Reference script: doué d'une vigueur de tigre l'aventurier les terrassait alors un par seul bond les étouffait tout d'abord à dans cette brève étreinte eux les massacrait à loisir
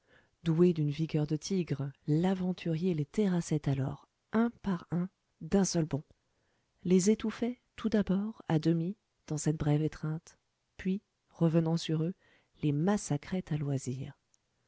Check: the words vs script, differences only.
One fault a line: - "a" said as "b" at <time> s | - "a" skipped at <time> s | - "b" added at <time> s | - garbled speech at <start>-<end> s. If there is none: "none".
- "un d'un" added at 4.9 s
- "demi" added at 8.6 s
- "puis revenant sur" added at 10.8 s